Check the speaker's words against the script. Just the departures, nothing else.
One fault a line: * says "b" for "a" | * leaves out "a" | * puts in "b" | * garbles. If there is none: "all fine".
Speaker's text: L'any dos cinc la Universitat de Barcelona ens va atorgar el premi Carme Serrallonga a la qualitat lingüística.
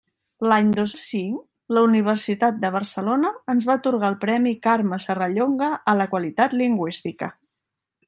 all fine